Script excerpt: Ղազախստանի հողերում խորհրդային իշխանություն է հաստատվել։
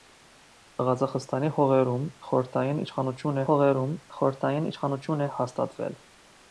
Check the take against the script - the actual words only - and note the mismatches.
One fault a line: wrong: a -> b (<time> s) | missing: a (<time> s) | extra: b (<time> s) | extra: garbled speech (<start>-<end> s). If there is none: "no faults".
extra: հողերում խորհրդային իշխանություն (3.5 s)